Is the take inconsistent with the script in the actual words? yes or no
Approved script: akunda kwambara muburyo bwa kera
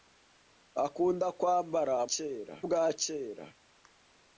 yes